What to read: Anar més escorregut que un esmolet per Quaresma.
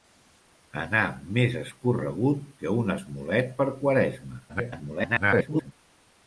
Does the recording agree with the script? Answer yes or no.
no